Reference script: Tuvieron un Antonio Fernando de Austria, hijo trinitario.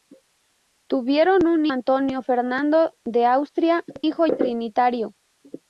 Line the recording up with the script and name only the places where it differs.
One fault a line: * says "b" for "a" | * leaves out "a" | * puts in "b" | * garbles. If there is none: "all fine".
all fine